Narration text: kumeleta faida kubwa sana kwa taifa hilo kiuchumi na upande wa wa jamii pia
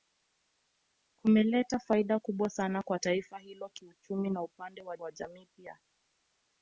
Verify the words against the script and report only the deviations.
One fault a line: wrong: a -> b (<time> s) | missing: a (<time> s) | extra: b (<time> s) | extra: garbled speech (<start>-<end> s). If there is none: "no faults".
no faults